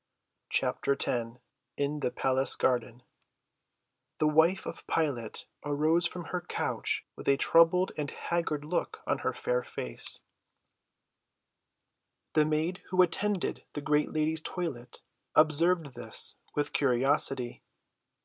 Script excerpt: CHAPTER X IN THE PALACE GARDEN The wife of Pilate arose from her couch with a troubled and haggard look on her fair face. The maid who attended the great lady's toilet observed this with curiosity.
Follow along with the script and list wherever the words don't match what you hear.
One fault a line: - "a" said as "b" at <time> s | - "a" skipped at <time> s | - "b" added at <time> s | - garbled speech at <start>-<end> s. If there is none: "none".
none